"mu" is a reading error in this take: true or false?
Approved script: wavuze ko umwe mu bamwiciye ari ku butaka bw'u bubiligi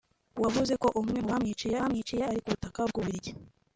false